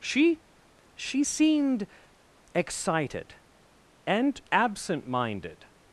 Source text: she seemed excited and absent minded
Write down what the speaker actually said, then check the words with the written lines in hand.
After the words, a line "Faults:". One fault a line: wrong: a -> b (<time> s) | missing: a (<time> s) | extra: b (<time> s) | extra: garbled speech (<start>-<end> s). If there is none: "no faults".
she she seemed excited and absent minded
Faults:
extra: she (0.9 s)